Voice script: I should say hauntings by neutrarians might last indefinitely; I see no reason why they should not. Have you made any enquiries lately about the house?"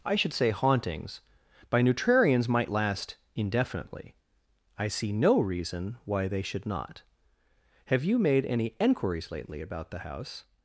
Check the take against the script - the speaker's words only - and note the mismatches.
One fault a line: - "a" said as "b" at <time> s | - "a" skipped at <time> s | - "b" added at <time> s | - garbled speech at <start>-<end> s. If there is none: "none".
none